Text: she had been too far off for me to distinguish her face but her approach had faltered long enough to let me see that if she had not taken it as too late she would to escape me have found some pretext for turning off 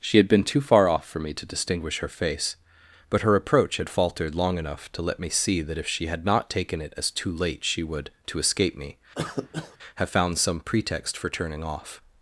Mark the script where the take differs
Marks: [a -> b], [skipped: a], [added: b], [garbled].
she had been too far off for me to distinguish her face but her approach had faltered long enough to let me see that if she had not taken it as too late she would to escape me have found some pretext for turning off